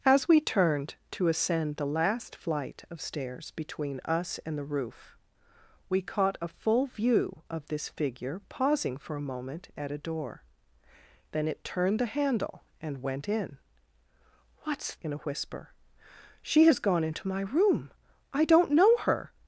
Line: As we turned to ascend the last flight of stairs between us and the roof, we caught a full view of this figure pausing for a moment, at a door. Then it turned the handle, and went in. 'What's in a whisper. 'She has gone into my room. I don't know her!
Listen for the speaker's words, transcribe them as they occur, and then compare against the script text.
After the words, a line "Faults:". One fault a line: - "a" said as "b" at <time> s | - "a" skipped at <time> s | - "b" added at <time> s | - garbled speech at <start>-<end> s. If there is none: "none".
As we turned to ascend the last flight of stairs between us and the roof, we caught a full view of this figure pausing for a moment, at a door. Then it turned the handle, and went in. 'What's in a whisper. 'She has gone into my room. I don't know her!
Faults:
none